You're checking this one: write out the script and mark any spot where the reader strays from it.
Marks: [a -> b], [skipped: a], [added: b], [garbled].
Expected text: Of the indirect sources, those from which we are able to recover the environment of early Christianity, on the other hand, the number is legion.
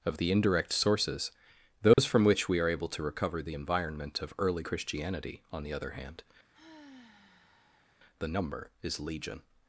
Of the indirect sources, those from which we are able to recover the environment of early Christianity, on the other hand, the number is legion.